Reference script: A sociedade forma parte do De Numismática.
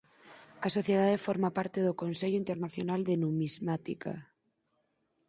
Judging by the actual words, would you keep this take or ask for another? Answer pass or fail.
fail